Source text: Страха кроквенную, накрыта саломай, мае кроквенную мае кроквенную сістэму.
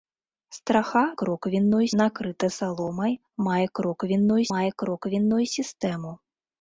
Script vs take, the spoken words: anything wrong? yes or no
no